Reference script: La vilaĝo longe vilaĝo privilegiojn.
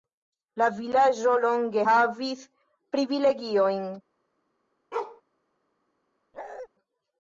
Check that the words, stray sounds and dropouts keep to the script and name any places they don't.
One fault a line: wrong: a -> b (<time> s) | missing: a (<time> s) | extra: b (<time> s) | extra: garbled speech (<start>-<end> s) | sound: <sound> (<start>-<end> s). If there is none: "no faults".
wrong: vilaĝo -> havis (1.9 s)
sound: bark (4.9-5.2 s)
sound: bark (6.3-6.7 s)